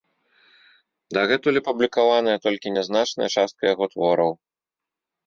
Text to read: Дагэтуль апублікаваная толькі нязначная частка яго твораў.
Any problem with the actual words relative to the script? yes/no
no